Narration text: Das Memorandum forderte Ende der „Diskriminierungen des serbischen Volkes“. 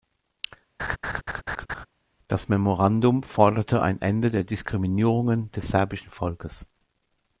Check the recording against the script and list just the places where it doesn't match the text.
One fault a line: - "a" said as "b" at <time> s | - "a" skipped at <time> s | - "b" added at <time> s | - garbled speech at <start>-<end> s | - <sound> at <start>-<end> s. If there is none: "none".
- laugh at 0.8-1.9 s
- "ein" added at 3.8 s